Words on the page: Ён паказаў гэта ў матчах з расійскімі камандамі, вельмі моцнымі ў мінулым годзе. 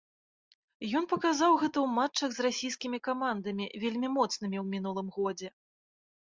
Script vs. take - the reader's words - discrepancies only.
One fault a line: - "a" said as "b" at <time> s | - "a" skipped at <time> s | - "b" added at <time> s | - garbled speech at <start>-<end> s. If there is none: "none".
none